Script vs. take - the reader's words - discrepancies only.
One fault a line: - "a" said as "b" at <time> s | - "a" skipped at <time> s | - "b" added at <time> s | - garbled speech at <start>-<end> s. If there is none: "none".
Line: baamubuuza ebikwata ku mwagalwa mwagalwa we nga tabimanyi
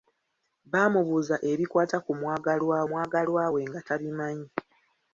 none